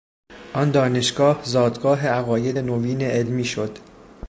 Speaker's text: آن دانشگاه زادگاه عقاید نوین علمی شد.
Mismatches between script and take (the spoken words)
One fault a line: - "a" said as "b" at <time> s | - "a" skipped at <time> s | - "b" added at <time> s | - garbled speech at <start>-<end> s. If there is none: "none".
none